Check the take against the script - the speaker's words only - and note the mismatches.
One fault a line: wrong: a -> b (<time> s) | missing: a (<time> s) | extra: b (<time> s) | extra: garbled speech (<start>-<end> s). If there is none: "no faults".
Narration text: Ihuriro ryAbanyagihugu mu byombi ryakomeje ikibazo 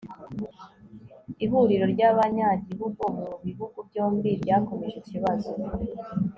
extra: bihugu (3.5 s)